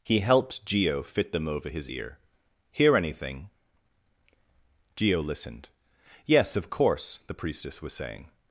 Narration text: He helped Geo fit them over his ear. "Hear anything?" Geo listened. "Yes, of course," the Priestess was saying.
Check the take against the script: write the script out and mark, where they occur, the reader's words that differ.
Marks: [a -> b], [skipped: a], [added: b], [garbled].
He helped Geo fit them over his ear. "Hear anything?" Geo listened. "Yes, of course," the Priestess was saying.